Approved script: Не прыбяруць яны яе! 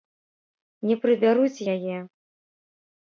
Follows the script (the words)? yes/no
no